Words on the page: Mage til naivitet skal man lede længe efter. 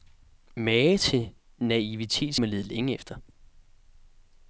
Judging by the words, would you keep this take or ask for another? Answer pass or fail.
fail